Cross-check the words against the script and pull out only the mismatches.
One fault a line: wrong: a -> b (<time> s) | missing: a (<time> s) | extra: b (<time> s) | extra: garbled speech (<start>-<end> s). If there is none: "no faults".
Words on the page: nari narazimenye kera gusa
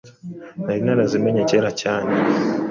wrong: gusa -> cyane (1.8 s)